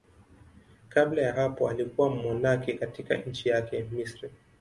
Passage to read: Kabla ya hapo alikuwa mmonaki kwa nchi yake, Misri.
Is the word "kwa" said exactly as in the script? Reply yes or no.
no